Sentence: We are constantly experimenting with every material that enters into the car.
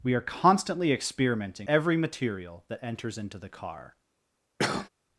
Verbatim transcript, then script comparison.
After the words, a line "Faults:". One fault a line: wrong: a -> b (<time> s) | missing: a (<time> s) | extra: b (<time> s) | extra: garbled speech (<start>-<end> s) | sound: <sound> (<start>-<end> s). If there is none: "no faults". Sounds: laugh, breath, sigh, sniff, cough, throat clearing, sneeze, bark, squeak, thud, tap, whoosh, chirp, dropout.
We are constantly experimenting every material that enters into the car.
Faults:
missing: with (1.7 s)
sound: cough (4.6-4.9 s)